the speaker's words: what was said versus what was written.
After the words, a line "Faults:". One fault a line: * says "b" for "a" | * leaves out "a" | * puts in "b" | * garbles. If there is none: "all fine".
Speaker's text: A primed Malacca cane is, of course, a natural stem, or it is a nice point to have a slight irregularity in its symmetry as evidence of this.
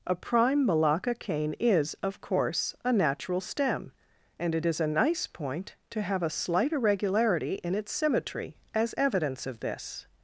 A prime Malacca cane is, of course, a natural stem, and it is a nice point to have a slight irregularity in its symmetry as evidence of this.
Faults:
* says "prime" for "primed"
* says "and" for "or"